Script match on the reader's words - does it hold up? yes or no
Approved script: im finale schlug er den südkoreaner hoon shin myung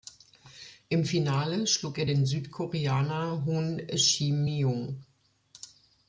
yes